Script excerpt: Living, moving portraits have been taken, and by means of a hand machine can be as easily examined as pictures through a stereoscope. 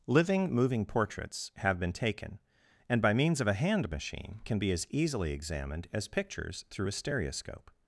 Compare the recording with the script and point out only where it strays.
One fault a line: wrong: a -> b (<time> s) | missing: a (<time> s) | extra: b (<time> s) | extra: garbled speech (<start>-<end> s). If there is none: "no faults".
no faults